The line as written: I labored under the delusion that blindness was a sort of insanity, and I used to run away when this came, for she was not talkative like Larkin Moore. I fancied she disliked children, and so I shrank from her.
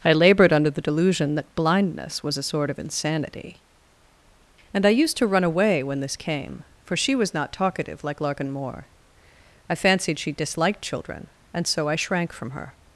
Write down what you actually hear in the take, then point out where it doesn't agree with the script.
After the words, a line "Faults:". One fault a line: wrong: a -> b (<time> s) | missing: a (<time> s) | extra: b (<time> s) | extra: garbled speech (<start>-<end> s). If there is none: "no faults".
I labored under the delusion that blindness was a sort of insanity, and I used to run away when this came, for she was not talkative like Larkin Moore. I fancied she disliked children, and so I shrank from her.
Faults:
no faults